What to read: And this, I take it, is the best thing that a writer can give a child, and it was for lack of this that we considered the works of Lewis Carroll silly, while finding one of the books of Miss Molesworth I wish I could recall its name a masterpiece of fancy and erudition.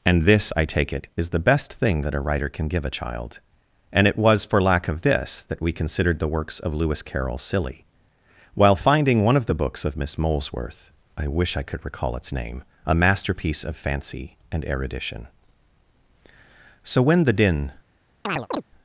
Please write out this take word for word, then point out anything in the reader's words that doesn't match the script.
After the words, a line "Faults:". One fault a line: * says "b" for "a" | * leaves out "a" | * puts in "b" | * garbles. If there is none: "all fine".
And this, I take it, is the best thing that a writer can give a child, and it was for lack of this that we considered the works of Lewis Carroll silly, while finding one of the books of Miss Molesworth I wish I could recall its name a masterpiece of fancy and erudition. So when the din
Faults:
* puts in "So when the din"